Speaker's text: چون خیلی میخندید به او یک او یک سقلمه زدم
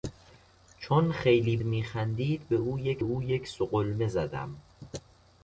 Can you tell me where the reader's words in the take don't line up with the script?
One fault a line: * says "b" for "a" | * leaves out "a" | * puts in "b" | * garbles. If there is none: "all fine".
all fine